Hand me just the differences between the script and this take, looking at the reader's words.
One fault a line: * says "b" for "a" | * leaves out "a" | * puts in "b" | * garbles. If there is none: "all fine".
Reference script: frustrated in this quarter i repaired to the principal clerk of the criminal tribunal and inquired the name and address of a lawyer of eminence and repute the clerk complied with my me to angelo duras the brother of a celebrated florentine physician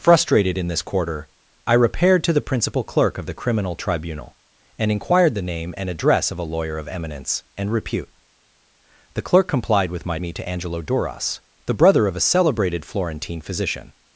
all fine